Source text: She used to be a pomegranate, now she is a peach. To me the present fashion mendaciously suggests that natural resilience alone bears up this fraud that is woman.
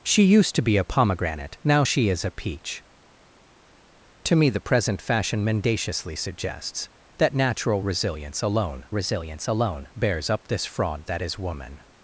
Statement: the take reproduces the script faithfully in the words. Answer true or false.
false